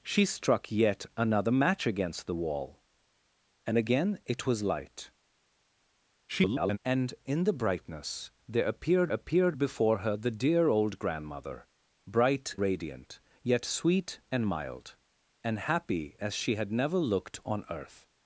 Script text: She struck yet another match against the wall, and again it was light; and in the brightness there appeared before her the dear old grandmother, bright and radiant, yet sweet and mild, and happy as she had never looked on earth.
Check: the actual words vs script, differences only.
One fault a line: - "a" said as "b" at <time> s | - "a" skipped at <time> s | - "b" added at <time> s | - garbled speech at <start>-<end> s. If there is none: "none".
- garbled speech at 6.3-6.8 s
- "appeared" added at 9.1 s
- "and" skipped at 12.6 s